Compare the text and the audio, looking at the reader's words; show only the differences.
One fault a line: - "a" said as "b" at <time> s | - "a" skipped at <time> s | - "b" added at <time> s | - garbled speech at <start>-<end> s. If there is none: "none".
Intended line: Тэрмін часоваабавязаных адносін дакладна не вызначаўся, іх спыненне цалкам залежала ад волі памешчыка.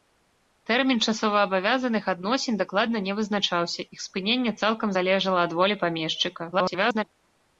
- garbled speech at 6.5-7.0 s